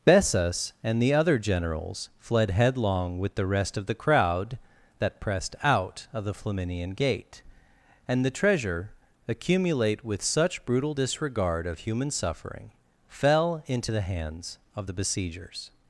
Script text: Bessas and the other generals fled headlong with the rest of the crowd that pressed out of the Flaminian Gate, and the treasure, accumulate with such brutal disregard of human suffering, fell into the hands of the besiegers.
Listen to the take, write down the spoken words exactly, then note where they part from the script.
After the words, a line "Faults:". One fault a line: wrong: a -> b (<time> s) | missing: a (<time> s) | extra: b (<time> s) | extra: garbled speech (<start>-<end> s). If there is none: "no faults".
Bessas and the other generals fled headlong with the rest of the crowd that pressed out of the Flaminian Gate, and the treasure, accumulate with such brutal disregard of human suffering, fell into the hands of the besiegers.
Faults:
no faults